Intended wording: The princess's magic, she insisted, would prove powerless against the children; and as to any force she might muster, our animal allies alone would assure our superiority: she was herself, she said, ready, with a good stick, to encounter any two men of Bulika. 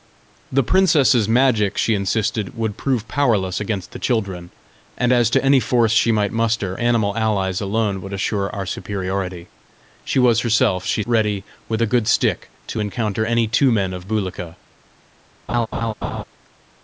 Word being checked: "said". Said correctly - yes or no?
no